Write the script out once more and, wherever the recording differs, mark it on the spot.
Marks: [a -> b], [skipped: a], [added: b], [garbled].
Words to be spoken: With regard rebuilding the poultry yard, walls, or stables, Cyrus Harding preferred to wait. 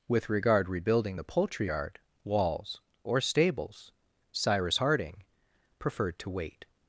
With regard rebuilding the poultry yard, walls, or stables, Cyrus Harding preferred to wait.